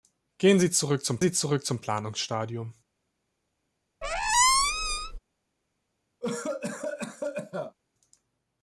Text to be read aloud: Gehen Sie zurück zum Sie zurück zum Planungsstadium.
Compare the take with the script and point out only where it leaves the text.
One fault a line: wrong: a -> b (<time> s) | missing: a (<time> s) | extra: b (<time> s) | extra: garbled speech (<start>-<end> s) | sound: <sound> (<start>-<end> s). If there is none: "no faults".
sound: squeak (4.0-5.2 s)
sound: cough (6.2-7.8 s)